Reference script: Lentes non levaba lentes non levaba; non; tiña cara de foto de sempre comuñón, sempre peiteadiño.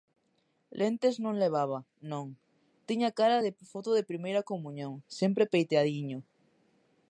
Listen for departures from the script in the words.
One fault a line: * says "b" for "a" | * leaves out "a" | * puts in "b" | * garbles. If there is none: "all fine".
* leaves out "lentes"
* leaves out "levaba non"
* says "primeira" for "sempre"